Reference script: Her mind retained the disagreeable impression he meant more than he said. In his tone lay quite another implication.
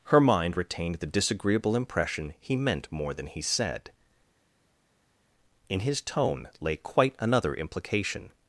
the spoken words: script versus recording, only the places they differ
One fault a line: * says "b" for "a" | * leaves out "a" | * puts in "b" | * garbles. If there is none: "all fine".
all fine